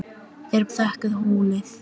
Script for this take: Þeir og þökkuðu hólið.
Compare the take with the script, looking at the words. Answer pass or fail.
pass